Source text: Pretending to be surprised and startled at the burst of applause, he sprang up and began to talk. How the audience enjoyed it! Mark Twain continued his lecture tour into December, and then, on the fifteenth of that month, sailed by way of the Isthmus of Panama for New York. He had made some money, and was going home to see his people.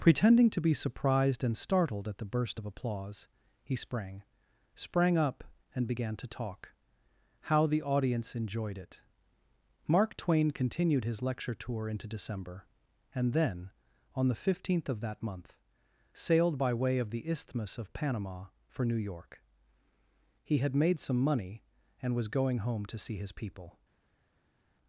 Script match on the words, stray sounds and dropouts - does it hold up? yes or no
no